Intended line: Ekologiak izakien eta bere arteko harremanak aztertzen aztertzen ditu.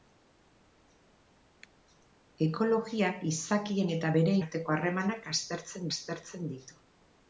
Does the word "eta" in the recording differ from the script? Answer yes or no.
no